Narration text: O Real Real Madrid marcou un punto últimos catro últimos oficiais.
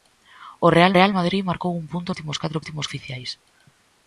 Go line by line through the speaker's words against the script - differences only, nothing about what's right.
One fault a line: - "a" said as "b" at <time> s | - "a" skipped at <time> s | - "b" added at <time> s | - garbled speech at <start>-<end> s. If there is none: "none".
none